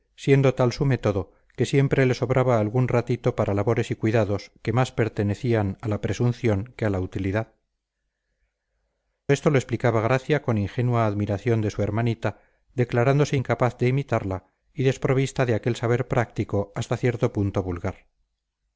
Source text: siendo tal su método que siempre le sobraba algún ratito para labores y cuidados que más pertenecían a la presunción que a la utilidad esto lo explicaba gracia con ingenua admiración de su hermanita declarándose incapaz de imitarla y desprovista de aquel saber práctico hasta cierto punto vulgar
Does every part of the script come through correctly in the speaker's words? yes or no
yes